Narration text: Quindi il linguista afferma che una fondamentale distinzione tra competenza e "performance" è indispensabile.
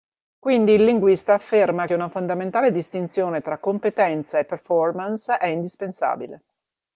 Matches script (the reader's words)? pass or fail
pass